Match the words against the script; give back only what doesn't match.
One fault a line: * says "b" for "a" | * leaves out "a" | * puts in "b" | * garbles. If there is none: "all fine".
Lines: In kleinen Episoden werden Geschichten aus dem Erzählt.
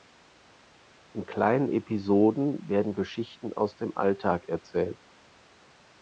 * puts in "Alltag"